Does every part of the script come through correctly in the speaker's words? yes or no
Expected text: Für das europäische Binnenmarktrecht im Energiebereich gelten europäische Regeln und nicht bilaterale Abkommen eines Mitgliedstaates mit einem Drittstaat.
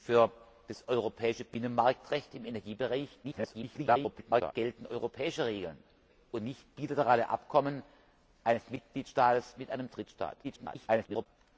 no